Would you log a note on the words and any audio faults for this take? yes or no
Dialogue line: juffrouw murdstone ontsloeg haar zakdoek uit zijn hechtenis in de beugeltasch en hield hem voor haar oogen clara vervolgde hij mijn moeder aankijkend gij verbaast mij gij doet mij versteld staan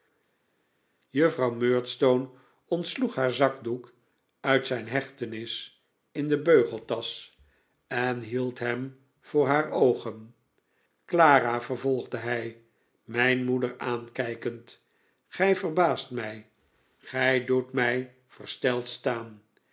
no